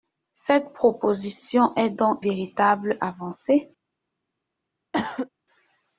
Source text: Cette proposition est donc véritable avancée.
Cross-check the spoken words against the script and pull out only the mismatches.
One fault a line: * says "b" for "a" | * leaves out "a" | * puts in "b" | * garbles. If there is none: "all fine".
all fine